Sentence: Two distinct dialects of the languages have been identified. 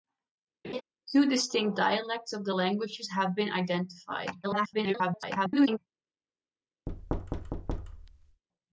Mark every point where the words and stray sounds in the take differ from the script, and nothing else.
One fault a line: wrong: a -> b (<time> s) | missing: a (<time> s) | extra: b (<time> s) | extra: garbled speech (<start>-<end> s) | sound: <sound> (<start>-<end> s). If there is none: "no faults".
sound: laugh (0.6-0.8 s)
extra: garbled speech (4.4-5.8 s)
sound: thud (6.9-8.4 s)